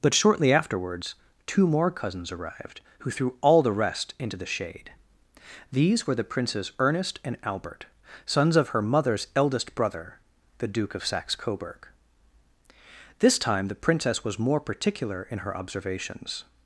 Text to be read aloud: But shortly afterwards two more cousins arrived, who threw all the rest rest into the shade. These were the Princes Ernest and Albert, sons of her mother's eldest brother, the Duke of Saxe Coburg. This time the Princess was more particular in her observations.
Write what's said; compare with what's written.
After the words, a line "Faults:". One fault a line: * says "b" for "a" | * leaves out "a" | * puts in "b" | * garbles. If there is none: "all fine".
But shortly afterwards two more cousins arrived, who threw all the rest into the shade. These were the Princes Ernest and Albert, sons of her mother's eldest brother, the Duke of Saxe Coburg. This time the Princess was more particular in her observations.
Faults:
* leaves out "rest"